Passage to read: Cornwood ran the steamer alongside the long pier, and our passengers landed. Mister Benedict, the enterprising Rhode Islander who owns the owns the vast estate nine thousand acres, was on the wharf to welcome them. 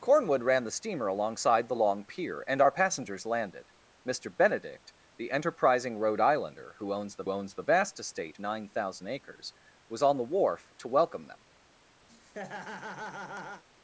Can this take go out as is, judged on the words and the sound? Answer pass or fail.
fail